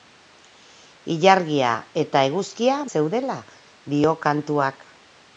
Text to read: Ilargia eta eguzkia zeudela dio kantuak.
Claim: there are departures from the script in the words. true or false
false